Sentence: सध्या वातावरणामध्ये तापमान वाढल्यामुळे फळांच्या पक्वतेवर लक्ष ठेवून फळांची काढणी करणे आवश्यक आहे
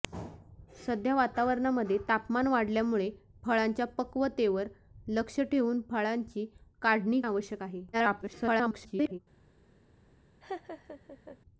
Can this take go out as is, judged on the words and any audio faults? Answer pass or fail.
fail